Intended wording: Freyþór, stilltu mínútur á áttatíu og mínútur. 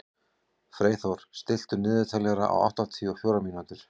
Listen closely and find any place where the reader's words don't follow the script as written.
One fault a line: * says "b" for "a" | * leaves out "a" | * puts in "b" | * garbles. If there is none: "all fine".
* says "niðurteljara" for "mínútur"
* puts in "fjórar"